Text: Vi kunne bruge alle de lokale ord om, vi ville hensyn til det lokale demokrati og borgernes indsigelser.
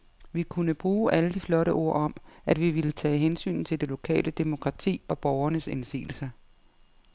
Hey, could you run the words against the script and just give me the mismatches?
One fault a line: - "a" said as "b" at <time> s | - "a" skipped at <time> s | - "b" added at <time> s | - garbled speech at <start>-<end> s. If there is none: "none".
- "lokale" said as "flotte" at 1.4 s
- "at" added at 2.5 s
- "tage" added at 2.9 s